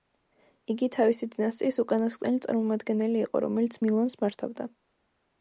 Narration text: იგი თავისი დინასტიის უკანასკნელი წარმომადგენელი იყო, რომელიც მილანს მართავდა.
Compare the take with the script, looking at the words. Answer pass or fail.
pass